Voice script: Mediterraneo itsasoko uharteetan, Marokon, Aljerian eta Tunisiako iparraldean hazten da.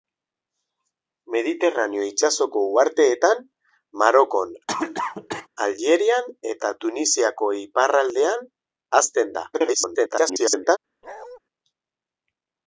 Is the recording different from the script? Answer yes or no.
yes